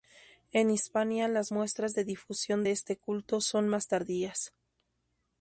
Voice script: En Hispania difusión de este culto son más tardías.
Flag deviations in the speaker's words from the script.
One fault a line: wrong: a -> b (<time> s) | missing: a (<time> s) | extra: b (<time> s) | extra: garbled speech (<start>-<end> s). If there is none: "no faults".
extra: las muestras de (1.3 s)